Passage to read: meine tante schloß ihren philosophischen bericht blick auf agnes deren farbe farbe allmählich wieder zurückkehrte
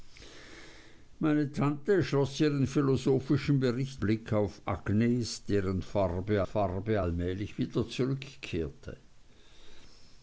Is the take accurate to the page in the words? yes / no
yes